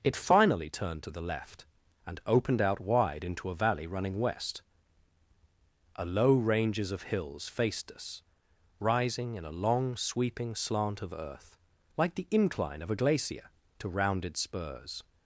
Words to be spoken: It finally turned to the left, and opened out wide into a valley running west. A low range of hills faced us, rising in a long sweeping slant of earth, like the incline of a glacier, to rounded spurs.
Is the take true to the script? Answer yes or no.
no